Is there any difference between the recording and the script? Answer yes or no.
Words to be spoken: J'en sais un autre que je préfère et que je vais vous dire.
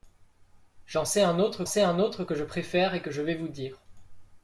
yes